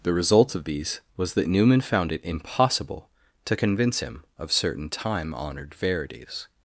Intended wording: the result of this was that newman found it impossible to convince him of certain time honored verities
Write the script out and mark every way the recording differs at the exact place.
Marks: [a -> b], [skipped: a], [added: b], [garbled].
the result of [this -> these] was that newman found it impossible to convince him of certain time honored verities